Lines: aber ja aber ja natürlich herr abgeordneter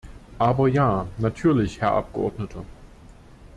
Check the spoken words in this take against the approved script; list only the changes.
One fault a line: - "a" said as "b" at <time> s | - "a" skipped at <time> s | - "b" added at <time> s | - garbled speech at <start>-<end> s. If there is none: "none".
- "aber ja" skipped at 1.1 s